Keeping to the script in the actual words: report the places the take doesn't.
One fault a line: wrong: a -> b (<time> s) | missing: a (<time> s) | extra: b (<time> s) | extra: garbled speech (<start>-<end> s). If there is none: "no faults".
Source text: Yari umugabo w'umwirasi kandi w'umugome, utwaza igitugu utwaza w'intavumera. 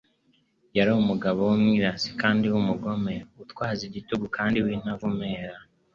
wrong: utwaza -> kandi (4.4 s)